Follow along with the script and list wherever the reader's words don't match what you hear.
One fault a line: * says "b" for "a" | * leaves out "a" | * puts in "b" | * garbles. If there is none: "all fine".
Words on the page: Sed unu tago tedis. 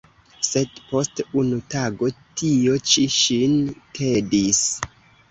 * puts in "post"
* puts in "tio ĉi ŝin"